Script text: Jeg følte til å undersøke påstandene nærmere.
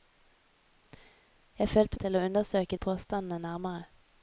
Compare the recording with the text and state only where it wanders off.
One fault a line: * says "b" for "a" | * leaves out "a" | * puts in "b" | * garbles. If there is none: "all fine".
all fine